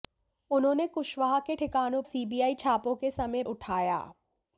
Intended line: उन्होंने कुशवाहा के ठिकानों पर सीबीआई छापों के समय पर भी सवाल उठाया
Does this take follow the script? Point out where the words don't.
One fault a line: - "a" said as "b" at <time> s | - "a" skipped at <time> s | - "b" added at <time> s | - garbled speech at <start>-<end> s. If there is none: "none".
- "पर" skipped at 2.0 s
- "पर भी सवाल" skipped at 3.4 s